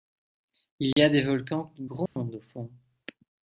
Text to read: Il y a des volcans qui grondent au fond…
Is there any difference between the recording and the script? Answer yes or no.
no